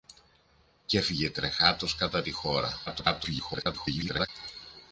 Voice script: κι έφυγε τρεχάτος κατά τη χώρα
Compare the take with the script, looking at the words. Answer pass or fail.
fail